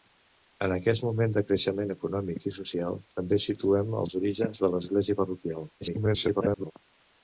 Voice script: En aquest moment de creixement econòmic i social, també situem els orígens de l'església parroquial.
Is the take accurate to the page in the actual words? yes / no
no